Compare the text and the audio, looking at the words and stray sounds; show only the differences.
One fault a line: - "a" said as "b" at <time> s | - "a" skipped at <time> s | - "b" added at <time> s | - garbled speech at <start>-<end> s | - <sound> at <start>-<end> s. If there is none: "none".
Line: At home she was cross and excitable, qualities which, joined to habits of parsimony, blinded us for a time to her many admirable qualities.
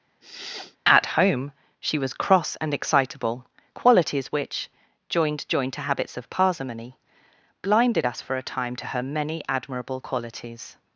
- sniff at 0.2-0.8 s
- "joined" added at 5.5 s